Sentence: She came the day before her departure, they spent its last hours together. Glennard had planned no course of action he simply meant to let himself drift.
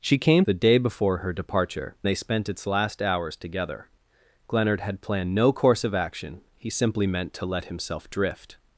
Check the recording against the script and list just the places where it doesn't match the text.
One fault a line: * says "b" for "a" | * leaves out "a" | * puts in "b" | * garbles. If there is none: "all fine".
all fine